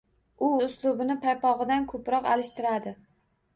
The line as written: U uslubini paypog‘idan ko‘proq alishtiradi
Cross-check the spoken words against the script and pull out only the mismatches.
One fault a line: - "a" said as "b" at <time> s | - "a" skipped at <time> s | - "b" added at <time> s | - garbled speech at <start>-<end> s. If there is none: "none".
none